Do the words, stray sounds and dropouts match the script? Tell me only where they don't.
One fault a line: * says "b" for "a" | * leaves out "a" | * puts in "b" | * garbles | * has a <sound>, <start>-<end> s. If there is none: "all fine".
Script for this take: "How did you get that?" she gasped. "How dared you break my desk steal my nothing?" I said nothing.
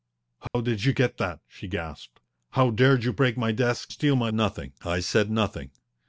* has a dropout, 0.5-0.5 s